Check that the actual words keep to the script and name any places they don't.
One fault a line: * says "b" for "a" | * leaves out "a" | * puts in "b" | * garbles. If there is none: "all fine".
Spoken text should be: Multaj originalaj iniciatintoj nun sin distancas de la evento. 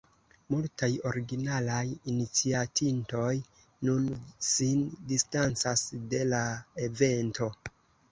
all fine